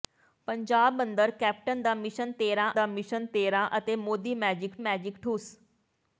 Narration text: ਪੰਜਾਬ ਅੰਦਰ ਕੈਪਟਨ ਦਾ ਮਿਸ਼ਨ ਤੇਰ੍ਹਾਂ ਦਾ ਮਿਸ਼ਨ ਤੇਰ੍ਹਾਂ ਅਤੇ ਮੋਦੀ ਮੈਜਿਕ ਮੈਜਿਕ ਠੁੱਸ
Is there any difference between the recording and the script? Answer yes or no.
no